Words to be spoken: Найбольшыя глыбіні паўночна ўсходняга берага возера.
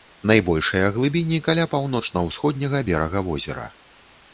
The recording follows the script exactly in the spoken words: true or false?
false